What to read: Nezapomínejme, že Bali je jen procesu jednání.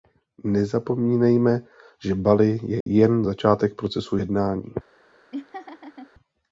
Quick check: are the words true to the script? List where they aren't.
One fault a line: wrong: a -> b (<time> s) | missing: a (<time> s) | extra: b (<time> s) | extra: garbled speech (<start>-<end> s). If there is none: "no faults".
extra: začátek (3.2 s)